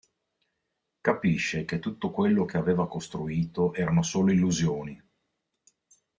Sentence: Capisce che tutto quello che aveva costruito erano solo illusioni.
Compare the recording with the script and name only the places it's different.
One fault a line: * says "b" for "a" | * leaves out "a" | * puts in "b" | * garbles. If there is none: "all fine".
all fine